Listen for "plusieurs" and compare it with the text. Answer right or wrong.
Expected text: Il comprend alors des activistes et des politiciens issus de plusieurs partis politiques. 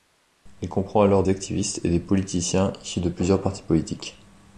right